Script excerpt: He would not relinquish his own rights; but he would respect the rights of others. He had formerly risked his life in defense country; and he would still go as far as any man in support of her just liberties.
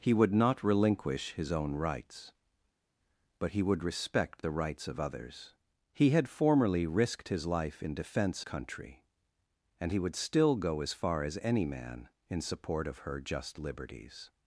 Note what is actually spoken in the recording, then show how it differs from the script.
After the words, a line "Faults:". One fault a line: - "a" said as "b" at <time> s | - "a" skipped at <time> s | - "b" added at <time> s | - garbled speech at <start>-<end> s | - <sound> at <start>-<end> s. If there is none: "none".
He would not relinquish his own rights; but he would respect the rights of others. He had formerly risked his life in defense country; and he would still go as far as any man in support of her just liberties.
Faults:
none